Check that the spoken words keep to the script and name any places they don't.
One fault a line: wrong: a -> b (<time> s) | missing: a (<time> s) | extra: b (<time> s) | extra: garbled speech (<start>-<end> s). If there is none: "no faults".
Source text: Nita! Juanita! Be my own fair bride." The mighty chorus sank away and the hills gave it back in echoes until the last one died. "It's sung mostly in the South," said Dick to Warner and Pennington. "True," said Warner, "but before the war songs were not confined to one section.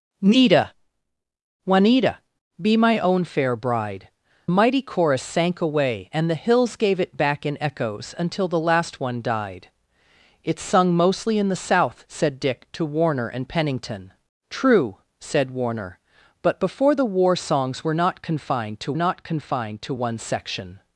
missing: The (4.1 s)
extra: not confined to (19.0 s)